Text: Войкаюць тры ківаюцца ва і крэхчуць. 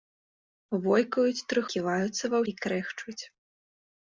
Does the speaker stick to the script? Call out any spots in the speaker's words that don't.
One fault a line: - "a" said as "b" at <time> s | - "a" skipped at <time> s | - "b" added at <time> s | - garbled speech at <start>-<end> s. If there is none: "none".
none